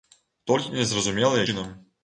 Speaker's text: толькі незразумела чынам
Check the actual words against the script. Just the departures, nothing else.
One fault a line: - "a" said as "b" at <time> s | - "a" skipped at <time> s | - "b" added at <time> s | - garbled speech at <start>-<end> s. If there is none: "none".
none